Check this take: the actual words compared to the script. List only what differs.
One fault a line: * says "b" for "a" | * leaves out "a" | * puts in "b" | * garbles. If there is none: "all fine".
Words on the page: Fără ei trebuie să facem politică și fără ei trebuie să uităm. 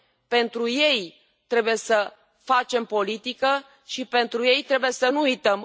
* says "Pentru" for "Fără"
* says "pentru" for "fără"
* puts in "nu"